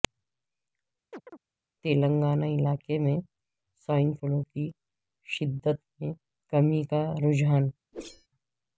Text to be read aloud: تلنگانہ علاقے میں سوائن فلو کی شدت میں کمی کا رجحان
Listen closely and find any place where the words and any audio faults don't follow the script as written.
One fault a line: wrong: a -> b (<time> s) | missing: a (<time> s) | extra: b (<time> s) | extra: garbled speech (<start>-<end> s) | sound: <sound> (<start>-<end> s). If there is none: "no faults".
sound: chirp (1.1-1.4 s)
sound: whoosh (7.9-8.3 s)